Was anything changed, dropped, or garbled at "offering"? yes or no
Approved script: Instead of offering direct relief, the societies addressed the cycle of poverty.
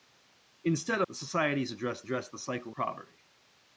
yes